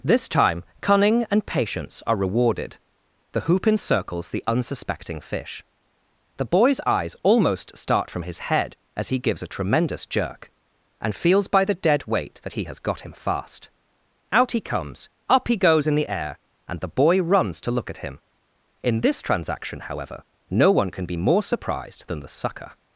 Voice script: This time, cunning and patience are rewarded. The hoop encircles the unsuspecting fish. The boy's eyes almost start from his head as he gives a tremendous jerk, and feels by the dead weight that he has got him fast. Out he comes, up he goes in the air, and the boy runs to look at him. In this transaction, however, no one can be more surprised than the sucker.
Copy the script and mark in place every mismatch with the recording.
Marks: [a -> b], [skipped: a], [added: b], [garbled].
This time, cunning and patience are rewarded. The hoop encircles the unsuspecting fish. The boy's eyes almost start from his head as he gives a tremendous jerk, and feels by the dead weight that he has got him fast. Out he comes, up he goes in the air, and the boy runs to look at him. In this transaction, however, no one can be more surprised than the sucker.